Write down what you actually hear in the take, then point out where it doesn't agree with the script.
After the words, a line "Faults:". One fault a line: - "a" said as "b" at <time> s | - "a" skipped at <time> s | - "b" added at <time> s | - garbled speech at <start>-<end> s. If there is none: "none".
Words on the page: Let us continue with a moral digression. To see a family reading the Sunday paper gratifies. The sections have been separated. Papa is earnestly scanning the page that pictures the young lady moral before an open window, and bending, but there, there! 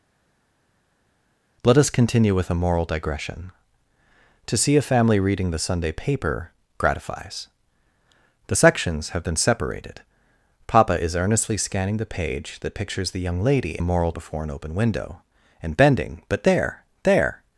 Let us continue with a moral digression. To see a family reading the Sunday paper gratifies. The sections have been separated. Papa is earnestly scanning the page that pictures the young lady moral before an open window, and bending, but there, there!
Faults:
none